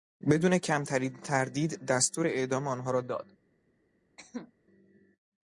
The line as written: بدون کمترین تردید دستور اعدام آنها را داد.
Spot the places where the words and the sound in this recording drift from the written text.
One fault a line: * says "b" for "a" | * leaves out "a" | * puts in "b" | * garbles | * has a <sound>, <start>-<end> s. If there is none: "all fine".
* has a cough, 4.2-4.5 s